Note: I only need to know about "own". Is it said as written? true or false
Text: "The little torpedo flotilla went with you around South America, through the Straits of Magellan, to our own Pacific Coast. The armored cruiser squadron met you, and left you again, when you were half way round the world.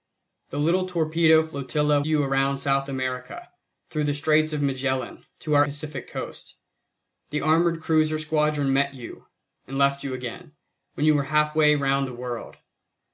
false